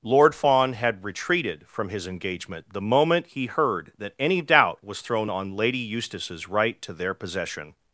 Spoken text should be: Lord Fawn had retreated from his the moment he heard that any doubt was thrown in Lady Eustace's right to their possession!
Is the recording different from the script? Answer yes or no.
yes